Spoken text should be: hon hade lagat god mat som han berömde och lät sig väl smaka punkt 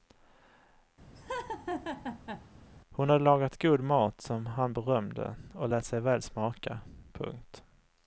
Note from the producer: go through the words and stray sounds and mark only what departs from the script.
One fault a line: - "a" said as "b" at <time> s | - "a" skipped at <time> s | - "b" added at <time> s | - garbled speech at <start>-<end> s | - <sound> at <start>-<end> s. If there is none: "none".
- laugh at 1.2-2.5 s